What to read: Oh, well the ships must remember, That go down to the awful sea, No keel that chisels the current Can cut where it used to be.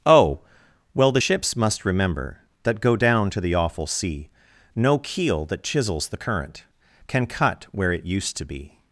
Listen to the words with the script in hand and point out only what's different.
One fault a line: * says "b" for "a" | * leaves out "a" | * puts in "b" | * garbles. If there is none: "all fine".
all fine